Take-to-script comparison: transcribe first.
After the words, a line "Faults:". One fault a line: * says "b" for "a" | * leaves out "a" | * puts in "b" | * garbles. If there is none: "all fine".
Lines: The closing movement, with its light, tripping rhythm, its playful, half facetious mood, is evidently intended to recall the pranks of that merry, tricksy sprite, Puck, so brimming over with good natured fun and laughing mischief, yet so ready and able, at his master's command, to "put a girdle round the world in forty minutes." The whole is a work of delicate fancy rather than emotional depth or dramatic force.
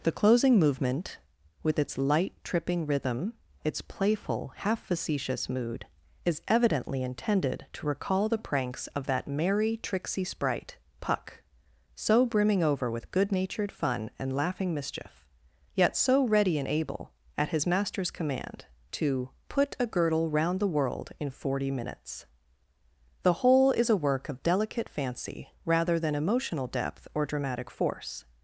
The closing movement, with its light, tripping rhythm, its playful, half facetious mood, is evidently intended to recall the pranks of that merry, tricksy sprite, Puck, so brimming over with good natured fun and laughing mischief, yet so ready and able, at his master's command, to "put a girdle round the world in forty minutes." The whole is a work of delicate fancy rather than emotional depth or dramatic force.
Faults:
all fine